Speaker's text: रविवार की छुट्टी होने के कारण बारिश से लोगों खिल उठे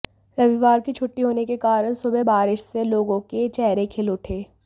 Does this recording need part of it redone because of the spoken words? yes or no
yes